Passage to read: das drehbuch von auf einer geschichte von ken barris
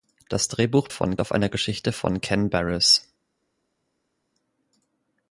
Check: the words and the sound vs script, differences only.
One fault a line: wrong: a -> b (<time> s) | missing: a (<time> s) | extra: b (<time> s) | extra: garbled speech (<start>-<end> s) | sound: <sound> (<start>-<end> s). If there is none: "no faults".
no faults